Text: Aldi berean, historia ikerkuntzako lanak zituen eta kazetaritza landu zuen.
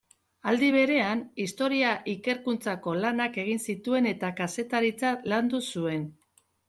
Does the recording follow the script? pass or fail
fail